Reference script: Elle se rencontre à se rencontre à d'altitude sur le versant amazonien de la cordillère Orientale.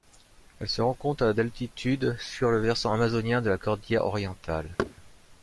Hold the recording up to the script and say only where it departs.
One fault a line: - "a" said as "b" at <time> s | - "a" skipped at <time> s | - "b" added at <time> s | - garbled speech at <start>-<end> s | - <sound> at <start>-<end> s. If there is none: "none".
- "se rencontre à" skipped at 1.3 s
- thud at 4.8-4.9 s